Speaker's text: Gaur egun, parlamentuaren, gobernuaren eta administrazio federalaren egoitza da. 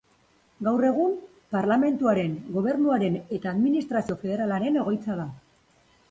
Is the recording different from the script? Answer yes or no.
no